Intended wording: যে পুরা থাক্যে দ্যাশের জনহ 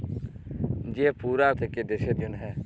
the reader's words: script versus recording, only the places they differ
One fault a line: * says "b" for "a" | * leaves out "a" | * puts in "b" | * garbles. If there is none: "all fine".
all fine